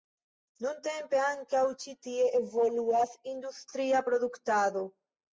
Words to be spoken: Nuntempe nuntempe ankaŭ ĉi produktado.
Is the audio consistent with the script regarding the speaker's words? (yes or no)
no